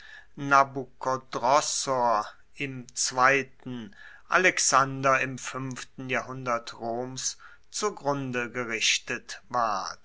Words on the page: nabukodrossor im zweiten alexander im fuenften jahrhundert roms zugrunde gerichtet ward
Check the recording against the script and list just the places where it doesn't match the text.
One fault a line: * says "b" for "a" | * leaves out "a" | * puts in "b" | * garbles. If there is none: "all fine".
all fine